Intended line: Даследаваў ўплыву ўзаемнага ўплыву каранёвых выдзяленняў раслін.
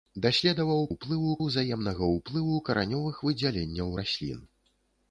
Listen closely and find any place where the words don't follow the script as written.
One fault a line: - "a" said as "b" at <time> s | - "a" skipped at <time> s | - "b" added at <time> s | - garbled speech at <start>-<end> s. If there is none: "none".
none